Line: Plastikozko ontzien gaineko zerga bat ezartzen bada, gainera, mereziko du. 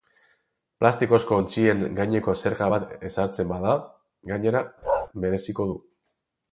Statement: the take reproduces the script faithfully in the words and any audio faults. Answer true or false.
false